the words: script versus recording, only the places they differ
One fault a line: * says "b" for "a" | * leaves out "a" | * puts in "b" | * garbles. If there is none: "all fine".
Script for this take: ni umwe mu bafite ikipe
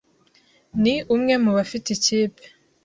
all fine